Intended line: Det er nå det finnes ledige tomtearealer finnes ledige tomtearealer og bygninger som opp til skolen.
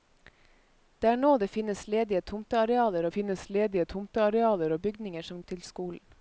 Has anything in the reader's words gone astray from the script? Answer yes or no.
no